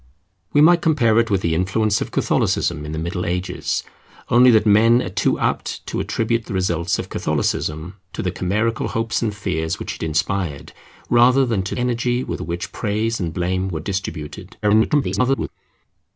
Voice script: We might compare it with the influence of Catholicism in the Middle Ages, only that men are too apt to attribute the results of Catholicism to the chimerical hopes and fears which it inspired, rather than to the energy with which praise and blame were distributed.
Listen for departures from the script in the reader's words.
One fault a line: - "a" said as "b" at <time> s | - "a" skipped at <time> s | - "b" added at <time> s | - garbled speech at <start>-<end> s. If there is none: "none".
- "the" skipped at 11.8 s
- garbled speech at 14.6-15.5 s